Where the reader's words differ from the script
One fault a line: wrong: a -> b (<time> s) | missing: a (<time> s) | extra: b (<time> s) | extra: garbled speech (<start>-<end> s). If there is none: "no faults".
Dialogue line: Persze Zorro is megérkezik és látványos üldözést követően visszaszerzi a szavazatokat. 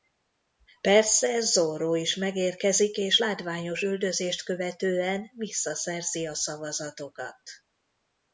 no faults